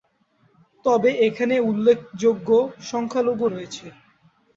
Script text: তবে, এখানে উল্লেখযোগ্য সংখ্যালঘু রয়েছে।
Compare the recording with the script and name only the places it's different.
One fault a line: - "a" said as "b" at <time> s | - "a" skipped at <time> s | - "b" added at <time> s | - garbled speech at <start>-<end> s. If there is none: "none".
none